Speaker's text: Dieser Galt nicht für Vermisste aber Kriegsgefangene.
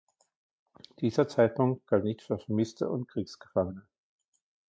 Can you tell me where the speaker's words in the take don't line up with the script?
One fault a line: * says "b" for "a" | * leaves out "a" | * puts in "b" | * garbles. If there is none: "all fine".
* puts in "Zeitpunkt"
* says "und" for "aber"